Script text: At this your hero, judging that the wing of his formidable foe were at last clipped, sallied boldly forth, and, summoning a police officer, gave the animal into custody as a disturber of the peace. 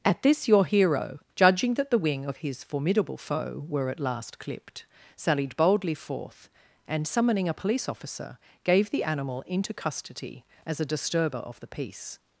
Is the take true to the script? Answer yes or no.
yes